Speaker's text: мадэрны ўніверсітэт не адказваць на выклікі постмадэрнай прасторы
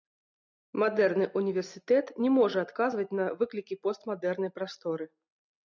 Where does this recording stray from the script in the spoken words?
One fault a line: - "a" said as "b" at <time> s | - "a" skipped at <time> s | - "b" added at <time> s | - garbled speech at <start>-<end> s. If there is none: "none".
- "можа" added at 2.4 s